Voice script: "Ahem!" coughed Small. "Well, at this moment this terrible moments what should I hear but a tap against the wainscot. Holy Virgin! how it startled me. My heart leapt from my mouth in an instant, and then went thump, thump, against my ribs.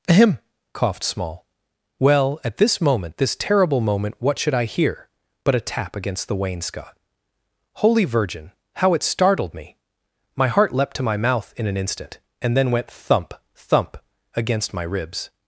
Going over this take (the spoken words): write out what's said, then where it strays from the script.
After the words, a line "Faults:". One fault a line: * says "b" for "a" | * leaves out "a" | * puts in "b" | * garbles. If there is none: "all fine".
"Ahem!" coughed Small. "Well, at this moment this terrible moment what should I hear but a tap against the wainscot. Holy Virgin! how it startled me. My heart leapt to my mouth in an instant, and then went thump, thump, against my ribs.
Faults:
* says "moment" for "moments"
* says "to" for "from"